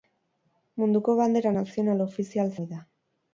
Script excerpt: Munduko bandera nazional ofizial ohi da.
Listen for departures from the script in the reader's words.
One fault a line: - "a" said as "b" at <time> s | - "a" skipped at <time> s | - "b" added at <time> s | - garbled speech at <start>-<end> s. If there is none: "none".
none